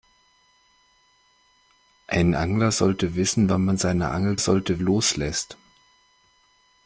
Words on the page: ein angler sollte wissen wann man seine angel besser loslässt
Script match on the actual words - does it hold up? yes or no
no